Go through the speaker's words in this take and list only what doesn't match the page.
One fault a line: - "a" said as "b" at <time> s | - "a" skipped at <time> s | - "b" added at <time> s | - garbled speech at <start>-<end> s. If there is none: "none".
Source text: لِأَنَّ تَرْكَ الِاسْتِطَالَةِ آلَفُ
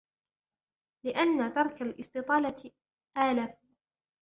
none